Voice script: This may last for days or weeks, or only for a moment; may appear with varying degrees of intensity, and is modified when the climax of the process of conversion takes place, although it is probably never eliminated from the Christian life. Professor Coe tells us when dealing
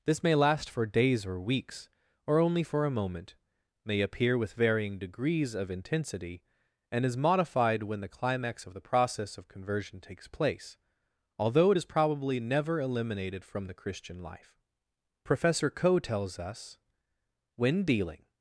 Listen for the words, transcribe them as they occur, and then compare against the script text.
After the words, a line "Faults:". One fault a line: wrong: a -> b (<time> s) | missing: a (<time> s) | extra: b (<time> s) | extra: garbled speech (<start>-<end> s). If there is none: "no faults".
This may last for days or weeks, or only for a moment; may appear with varying degrees of intensity, and is modified when the climax of the process of conversion takes place, although it is probably never eliminated from the Christian life. Professor Coe tells us when dealing
Faults:
no faults